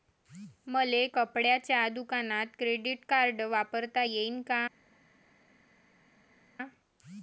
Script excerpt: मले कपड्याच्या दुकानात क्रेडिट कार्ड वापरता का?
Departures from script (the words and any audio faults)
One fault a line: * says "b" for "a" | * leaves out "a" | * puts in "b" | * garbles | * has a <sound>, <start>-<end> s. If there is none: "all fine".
* puts in "येईन"